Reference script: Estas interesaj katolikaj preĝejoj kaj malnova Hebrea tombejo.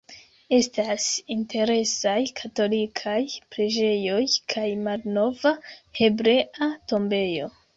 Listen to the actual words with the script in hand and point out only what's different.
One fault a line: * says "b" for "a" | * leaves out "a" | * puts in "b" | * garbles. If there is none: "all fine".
all fine